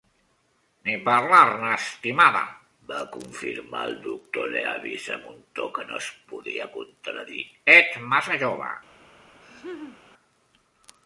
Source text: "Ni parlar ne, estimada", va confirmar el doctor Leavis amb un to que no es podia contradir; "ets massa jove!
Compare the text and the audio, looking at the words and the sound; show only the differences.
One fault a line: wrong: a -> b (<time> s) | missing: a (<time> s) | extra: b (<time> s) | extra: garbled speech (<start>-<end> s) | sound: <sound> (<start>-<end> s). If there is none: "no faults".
sound: laugh (9.4-10.0 s)